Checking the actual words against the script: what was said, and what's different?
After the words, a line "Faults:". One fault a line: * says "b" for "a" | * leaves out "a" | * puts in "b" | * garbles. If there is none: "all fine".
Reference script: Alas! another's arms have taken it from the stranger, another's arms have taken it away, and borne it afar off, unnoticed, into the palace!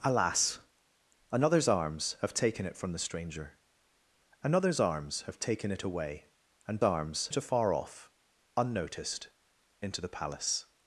Alas! another's arms have taken it from the stranger, another's arms have taken it away, and arms it afar off, unnoticed, into the palace!
Faults:
* says "arms" for "borne"